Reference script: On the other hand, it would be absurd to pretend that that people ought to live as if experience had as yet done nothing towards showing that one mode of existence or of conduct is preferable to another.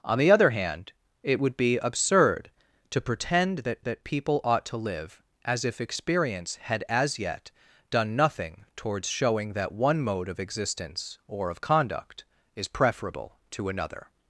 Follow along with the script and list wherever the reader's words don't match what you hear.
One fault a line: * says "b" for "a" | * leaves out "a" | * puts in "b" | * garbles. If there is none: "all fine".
all fine